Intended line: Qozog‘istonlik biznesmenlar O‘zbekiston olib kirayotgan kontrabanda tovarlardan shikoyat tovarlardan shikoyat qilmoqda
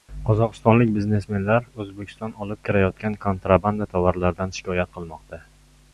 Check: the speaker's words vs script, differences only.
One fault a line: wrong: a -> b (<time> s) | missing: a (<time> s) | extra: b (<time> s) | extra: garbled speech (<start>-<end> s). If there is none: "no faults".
missing: tovarlardan shikoyat (5.0 s)